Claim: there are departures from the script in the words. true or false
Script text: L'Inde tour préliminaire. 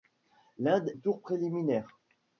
false